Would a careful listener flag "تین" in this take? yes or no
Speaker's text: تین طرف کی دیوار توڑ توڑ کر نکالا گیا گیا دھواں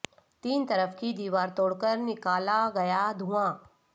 no